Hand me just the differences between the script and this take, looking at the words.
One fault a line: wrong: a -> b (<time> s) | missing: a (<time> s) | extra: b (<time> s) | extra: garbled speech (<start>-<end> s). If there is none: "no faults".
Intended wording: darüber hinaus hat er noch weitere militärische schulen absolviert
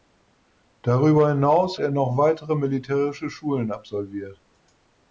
missing: hat (1.8 s)